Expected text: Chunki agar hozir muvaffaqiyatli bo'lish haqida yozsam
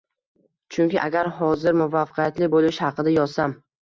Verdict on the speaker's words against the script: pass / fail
pass